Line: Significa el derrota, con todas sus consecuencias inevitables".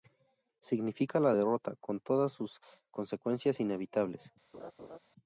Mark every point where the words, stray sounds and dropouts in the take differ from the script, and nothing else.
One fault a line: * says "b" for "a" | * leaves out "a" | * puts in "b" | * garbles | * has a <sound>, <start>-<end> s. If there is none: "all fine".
* says "la" for "el"
* has a laugh, 4.5-5.0 s